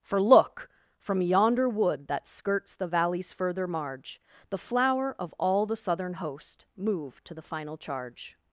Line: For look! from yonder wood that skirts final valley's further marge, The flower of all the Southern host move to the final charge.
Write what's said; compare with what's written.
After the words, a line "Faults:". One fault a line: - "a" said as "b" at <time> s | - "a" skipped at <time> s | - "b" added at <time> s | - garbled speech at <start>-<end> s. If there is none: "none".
For look! from yonder wood that skirts the valley's further marge, The flower of all the Southern host move to the final charge.
Faults:
- "final" said as "the" at 2.8 s